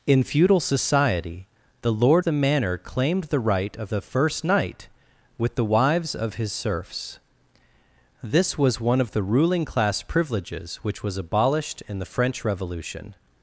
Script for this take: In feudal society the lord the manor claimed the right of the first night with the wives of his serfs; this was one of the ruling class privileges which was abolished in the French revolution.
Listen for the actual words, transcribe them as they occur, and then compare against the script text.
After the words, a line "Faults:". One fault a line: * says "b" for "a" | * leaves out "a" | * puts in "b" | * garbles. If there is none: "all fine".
In feudal society the lord the manor claimed the right of the first night with the wives of his serfs; this was one of the ruling class privileges which was abolished in the French revolution.
Faults:
all fine